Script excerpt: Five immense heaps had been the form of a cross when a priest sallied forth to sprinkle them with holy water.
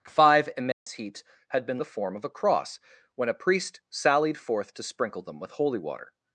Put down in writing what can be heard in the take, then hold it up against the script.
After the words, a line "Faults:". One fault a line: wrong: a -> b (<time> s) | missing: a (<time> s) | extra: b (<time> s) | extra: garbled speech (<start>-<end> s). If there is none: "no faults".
Five immense heaps had been the form of a cross when a priest sallied forth to sprinkle them with holy water.
Faults:
no faults